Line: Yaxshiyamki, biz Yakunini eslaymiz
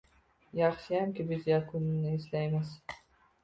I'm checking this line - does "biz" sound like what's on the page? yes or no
yes